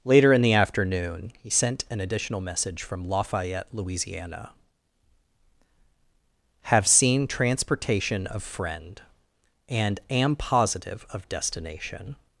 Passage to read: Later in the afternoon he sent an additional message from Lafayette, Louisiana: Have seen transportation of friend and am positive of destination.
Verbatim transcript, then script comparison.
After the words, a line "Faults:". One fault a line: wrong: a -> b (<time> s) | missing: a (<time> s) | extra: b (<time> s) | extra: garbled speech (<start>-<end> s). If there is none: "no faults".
Later in the afternoon he sent an additional message from Lafayette, Louisiana: Have seen transportation of friend and am positive of destination.
Faults:
no faults